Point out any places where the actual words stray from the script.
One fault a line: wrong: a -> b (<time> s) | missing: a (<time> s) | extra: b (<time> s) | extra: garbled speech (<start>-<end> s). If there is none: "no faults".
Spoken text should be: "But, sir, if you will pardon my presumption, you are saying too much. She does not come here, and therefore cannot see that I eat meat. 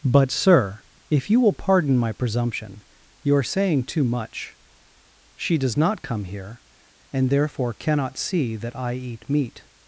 no faults